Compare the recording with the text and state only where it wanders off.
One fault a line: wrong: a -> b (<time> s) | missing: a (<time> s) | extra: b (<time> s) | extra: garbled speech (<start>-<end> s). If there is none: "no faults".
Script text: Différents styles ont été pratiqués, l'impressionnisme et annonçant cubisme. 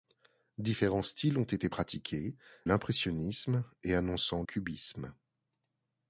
no faults